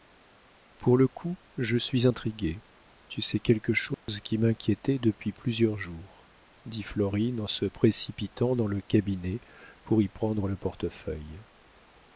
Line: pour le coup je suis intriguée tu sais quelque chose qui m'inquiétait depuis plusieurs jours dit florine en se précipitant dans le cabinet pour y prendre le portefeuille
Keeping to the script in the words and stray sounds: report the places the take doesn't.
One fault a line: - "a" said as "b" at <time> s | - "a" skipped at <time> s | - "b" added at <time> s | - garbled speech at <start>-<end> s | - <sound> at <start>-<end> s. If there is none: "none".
- dropout at 3.9-4.1 s